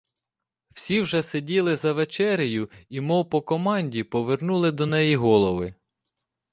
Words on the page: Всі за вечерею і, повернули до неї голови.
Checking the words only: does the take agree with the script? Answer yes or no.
no